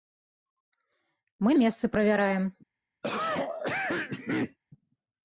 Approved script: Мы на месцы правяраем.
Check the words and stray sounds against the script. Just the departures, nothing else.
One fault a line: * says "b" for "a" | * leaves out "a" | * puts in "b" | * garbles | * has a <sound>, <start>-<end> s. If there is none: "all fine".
* leaves out "на"
* has a cough, 3.0-4.6 s